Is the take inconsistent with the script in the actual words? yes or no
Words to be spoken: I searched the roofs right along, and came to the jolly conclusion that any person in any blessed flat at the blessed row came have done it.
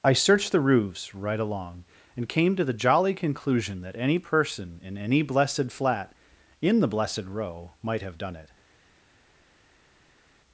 yes